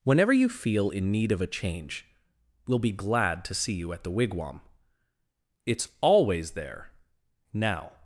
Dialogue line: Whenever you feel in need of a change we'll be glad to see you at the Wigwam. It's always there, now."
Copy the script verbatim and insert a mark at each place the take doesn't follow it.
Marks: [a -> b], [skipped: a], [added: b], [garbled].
Whenever you feel in need of a change we'll be glad to see you at the Wigwam. It's always there, now."